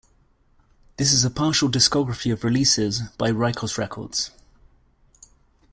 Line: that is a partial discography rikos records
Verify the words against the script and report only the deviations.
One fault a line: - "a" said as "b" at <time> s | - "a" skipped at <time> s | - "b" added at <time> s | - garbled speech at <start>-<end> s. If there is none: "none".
- "that" said as "this" at 1.0 s
- "of releases by" added at 2.3 s